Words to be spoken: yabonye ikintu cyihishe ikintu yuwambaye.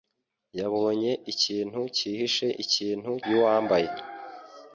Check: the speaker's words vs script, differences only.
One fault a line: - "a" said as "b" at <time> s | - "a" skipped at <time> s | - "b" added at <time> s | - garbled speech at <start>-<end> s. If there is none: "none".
none